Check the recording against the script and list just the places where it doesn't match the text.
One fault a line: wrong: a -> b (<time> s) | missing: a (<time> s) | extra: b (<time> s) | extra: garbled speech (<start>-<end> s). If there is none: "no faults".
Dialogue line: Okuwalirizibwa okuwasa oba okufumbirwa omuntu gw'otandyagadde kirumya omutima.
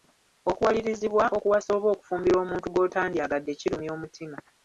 no faults